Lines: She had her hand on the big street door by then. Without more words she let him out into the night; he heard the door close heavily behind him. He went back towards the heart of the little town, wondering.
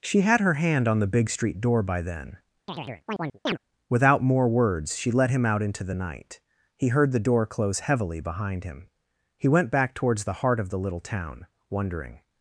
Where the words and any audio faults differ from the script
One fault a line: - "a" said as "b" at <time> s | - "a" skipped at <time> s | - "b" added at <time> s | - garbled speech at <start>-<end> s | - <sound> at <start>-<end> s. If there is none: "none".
- chirp at 2.7-3.6 s